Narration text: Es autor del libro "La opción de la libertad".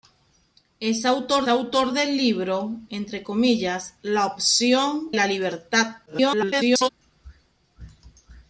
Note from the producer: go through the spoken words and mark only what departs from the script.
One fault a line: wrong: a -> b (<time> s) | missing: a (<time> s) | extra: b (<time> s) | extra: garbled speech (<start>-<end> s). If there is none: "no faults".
extra: autor (1.5 s)
missing: de (5.1 s)
extra: garbled speech (6.1-6.9 s)